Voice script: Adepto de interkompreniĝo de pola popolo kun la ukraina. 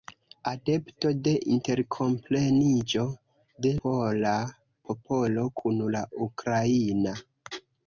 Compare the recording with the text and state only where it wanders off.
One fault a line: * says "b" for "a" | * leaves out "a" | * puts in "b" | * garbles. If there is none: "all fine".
all fine